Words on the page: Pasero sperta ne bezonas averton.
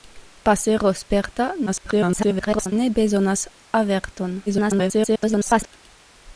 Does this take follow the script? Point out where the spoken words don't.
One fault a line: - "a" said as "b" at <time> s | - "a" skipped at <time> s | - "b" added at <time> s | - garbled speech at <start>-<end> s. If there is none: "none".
- garbled speech at 1.7-2.7 s
- garbled speech at 4.5-5.7 s